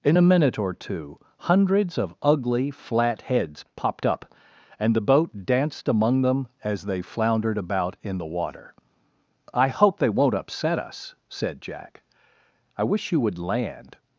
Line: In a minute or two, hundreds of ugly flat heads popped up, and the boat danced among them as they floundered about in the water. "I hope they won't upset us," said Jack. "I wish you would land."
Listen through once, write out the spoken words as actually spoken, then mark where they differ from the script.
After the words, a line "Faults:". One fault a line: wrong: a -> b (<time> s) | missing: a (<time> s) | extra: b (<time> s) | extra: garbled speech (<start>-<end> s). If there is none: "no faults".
In a minute or two, hundreds of ugly flat heads popped up, and the boat danced among them as they floundered about in the water. "I hope they won't upset us," said Jack. "I wish you would land."
Faults:
no faults